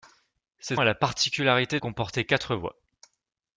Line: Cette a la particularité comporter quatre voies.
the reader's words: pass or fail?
pass